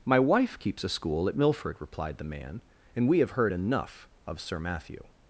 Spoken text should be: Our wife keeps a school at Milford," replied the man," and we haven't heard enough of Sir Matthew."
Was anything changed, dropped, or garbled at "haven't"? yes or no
yes